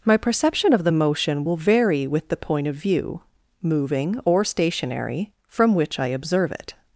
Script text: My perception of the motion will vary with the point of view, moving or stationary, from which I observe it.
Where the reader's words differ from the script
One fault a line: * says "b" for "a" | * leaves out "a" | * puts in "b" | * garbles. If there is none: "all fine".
all fine